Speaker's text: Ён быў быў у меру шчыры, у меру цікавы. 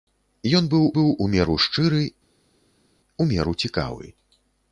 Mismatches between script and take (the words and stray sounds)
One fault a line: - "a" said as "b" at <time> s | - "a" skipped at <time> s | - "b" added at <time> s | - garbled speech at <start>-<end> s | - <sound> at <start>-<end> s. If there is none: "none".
none